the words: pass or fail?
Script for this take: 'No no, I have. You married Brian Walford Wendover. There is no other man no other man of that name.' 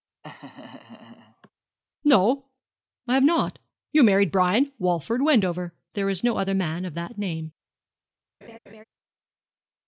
fail